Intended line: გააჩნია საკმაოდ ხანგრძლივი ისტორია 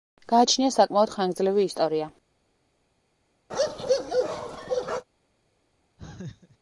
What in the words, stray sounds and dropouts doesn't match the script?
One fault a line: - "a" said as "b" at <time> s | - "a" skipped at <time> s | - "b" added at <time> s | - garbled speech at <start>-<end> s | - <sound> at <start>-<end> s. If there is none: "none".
- bark at 3.5-5.0 s
- laugh at 6.0-6.6 s